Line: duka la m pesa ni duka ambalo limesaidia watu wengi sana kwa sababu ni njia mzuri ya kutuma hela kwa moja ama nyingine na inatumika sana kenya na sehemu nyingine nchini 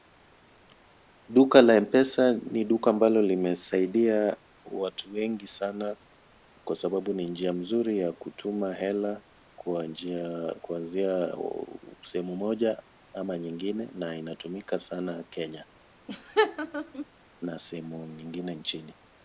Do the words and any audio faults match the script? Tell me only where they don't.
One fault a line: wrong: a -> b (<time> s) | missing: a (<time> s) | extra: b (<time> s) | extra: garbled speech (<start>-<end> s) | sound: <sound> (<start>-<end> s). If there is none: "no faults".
extra: njia kuanzia sehemu (9.9 s)
sound: laugh (16.1-17.1 s)